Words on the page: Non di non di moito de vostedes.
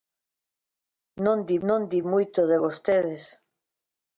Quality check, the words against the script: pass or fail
pass